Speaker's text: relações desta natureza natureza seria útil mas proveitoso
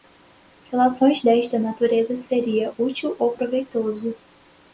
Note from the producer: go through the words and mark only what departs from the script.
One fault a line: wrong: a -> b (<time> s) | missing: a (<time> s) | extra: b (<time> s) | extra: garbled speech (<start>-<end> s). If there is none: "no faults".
missing: natureza (2.2 s)
wrong: mas -> ou (3.2 s)